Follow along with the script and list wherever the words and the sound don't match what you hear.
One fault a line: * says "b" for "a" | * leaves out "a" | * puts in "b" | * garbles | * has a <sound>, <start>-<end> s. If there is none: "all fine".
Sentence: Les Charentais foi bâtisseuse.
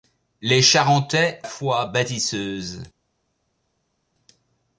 all fine